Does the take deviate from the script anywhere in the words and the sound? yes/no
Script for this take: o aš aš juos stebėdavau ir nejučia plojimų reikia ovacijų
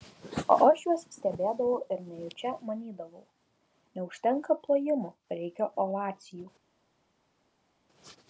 yes